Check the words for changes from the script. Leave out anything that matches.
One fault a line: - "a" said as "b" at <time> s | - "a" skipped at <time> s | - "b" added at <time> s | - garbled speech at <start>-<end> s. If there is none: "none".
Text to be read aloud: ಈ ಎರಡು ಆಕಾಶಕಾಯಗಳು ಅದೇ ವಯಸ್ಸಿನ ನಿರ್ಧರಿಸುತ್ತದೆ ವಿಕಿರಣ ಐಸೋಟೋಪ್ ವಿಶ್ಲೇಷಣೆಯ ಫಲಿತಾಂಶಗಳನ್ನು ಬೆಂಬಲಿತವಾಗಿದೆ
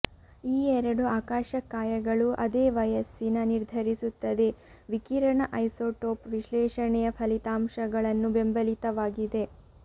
none